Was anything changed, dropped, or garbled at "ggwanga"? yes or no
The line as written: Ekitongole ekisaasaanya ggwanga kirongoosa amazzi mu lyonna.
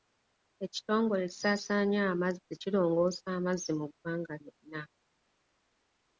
yes